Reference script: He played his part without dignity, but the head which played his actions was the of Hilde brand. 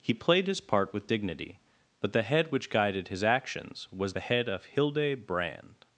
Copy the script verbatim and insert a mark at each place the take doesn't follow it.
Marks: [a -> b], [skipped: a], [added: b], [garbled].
He played his part [without -> with] dignity, but the head which [played -> guided] his actions was the [added: head] of Hilde brand.